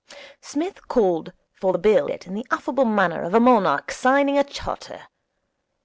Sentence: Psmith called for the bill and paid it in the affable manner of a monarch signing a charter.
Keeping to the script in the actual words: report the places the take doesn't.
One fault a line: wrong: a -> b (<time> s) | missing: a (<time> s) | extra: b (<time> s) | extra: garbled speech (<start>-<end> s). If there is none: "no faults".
missing: and paid (2.1 s)